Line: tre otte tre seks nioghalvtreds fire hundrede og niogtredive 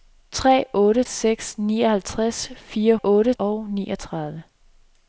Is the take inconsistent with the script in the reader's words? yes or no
yes